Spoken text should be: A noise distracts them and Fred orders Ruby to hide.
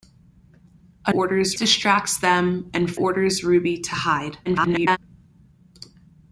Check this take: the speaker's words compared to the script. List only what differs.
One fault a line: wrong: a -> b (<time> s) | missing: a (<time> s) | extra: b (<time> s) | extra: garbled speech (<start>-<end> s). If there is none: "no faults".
wrong: noise -> orders (1.1 s)
missing: Fred (2.9 s)
extra: garbled speech (4.4-5.0 s)